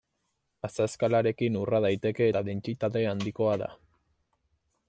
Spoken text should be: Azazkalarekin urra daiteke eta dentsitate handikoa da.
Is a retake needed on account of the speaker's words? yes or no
no